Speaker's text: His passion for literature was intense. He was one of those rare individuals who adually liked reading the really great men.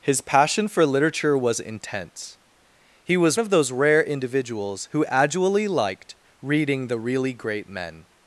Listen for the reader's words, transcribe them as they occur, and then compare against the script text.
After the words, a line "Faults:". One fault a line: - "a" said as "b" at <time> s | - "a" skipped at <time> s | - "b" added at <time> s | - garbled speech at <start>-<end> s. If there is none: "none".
His passion for literature was intense. He was of those rare individuals who adually liked reading the really great men.
Faults:
- "one" skipped at 3.4 s